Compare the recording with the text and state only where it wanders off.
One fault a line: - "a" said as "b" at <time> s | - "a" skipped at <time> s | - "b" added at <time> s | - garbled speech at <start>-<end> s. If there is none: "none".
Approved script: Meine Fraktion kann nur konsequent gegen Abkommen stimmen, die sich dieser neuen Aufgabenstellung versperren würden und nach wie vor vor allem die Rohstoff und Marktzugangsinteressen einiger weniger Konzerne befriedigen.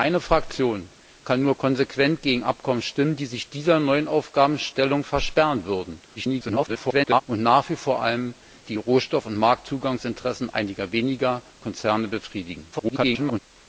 - garbled speech at 6.2-7.2 s
- garbled speech at 12.7-13.4 s